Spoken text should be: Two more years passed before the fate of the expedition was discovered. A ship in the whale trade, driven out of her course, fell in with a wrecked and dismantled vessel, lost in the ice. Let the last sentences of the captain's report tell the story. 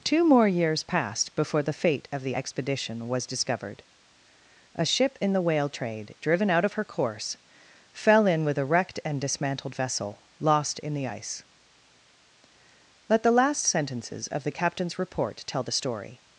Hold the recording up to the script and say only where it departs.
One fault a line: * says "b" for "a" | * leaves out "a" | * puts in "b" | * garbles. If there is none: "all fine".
all fine